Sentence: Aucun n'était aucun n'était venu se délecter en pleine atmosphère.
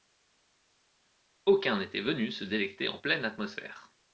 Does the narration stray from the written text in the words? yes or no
yes